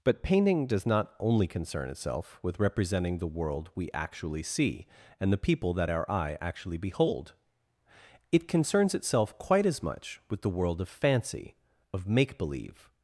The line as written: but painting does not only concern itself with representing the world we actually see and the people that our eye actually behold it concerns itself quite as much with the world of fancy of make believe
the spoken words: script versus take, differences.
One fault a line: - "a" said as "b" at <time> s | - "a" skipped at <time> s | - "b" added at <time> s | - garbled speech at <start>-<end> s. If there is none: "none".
none